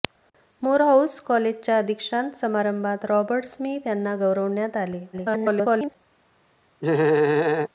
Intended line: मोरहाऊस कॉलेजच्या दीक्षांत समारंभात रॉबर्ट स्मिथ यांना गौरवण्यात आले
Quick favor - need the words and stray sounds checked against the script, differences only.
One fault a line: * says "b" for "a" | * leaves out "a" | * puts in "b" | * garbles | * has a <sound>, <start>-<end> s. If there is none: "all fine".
* garbles
* has a laugh, 6.8-7.7 s